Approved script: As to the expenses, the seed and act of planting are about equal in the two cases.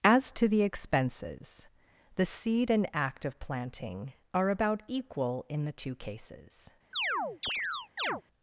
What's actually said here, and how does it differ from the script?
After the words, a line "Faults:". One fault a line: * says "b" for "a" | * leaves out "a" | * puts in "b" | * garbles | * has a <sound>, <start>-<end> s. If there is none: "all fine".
As to the expenses, the seed and act of planting are about equal in the two cases.
Faults:
* has a chirp, 6.9-8.2 s